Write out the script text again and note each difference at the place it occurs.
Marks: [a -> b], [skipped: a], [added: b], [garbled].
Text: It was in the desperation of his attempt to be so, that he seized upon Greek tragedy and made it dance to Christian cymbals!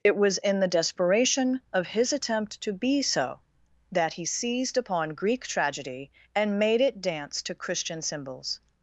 It was in the desperation of his attempt to be so, that he seized upon Greek tragedy and made it dance to Christian cymbals!